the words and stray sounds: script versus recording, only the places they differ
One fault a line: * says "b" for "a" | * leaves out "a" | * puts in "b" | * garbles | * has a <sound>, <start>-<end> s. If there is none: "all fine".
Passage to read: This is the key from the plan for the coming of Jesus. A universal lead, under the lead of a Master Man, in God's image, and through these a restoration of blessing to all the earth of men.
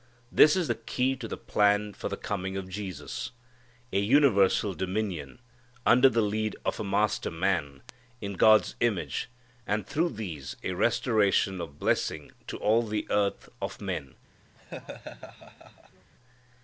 * says "to" for "from"
* says "dominion" for "lead"
* has a laugh, 14.5-16.1 s